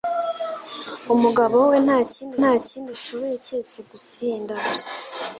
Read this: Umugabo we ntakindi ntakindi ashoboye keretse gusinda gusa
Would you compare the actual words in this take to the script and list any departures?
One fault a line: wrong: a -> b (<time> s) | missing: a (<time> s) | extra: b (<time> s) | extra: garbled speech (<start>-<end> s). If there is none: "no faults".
no faults